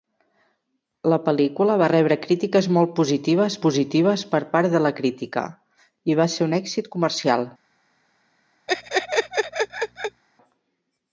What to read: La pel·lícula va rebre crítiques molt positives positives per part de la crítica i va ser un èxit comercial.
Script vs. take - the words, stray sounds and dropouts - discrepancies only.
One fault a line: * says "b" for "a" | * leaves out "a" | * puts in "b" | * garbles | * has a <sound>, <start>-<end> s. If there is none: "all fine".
* has a laugh, 8.7-10.2 s